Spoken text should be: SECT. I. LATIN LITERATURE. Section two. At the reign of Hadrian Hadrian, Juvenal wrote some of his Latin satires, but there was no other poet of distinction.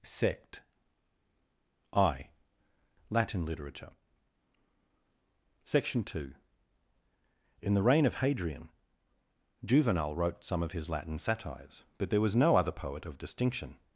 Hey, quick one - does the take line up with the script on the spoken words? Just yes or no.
no